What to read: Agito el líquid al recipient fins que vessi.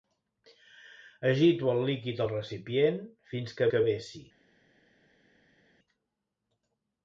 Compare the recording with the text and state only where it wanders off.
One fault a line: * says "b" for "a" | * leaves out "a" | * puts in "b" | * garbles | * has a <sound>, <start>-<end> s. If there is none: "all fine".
* puts in "que"